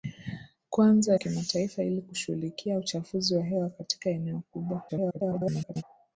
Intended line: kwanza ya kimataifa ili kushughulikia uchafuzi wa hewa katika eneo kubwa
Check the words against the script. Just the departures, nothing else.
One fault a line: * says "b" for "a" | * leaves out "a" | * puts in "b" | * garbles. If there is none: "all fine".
* leaves out "ya"
* garbles